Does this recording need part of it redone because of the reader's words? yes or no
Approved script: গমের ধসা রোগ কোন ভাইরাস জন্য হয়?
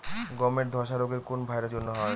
no